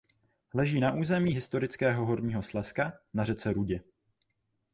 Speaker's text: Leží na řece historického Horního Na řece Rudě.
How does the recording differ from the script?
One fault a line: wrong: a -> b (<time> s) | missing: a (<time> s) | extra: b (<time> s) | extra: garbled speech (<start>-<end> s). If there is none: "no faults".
wrong: řece -> území (0.9 s)
extra: Slezska (2.4 s)